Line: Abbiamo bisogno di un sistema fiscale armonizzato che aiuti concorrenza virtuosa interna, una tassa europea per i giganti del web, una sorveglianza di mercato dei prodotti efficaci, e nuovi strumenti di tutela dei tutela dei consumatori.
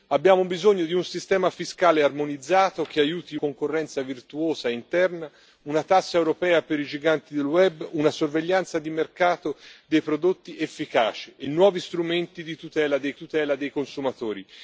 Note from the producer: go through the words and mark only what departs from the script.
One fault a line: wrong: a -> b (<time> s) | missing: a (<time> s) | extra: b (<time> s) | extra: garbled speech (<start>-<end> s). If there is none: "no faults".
no faults